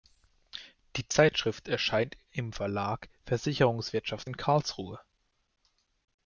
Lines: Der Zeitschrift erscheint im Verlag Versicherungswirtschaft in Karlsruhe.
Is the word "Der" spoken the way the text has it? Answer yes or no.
no